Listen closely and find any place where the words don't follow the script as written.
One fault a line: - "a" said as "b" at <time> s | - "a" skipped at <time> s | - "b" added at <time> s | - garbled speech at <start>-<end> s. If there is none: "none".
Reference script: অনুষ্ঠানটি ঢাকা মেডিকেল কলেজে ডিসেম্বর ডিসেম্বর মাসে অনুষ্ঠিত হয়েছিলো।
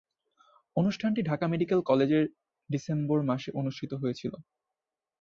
- "ডিসেম্বর" skipped at 3.2 s